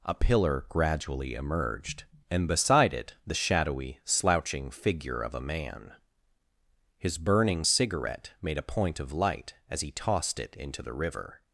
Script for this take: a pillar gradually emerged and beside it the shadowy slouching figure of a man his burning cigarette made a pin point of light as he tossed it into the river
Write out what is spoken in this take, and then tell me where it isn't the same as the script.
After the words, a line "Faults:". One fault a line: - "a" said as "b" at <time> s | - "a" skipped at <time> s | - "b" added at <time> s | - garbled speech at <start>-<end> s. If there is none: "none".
a pillar gradually emerged and beside it the shadowy slouching figure of a man his burning cigarette made a point of light as he tossed it into the river
Faults:
- "pin" skipped at 8.7 s